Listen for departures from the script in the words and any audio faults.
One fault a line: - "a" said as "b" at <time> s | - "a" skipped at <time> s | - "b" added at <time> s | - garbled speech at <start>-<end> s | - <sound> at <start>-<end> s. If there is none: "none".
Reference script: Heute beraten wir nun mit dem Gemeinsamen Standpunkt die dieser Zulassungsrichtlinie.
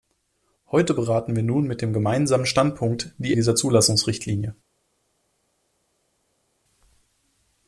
none